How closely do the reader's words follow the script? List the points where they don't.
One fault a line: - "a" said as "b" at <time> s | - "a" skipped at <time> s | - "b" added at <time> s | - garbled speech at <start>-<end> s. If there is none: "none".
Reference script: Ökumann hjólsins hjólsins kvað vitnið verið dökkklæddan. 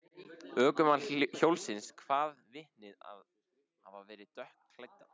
- "hjólsins" skipped at 1.9 s
- "hafa" added at 3.0 s